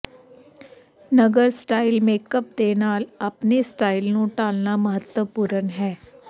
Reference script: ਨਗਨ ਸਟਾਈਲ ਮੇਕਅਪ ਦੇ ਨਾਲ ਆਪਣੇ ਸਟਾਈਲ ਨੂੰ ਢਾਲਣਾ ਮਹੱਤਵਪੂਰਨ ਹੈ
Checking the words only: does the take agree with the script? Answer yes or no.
yes